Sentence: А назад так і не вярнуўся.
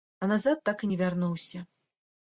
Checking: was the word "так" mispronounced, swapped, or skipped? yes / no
no